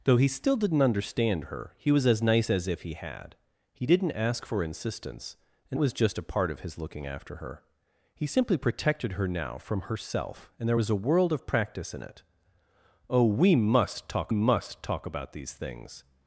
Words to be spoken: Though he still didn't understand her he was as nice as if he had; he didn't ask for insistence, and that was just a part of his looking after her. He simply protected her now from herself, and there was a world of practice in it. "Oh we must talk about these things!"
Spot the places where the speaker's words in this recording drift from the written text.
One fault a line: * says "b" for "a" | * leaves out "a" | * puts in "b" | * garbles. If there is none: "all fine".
* leaves out "that"
* puts in "must talk"